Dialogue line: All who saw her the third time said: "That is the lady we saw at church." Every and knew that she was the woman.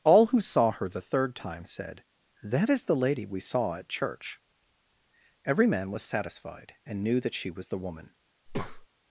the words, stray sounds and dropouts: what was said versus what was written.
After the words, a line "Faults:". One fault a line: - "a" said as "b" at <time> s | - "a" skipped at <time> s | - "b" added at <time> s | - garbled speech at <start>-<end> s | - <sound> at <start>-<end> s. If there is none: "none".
All who saw her the third time said: "That is the lady we saw at church." Every man was satisfied and knew that she was the woman.
Faults:
- "man was satisfied" added at 5.7 s
- breath at 8.5-8.9 s